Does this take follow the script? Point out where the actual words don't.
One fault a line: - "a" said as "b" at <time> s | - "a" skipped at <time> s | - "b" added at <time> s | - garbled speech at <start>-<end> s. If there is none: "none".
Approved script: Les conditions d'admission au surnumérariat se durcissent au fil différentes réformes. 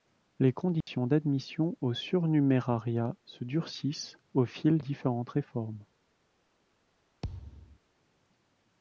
none